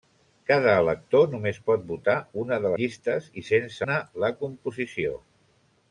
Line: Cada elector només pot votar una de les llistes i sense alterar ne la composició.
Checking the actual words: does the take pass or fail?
fail